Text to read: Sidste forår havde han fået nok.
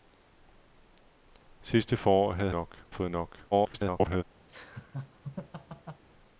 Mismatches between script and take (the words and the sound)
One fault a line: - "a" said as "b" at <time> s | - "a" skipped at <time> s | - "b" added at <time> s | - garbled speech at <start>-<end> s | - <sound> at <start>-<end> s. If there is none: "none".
- "han" said as "nok" at 2.5 s
- garbled speech at 3.5-4.2 s
- laugh at 4.5-6.0 s